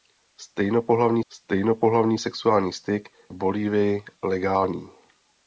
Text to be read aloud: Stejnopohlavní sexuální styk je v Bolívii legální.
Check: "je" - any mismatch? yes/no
yes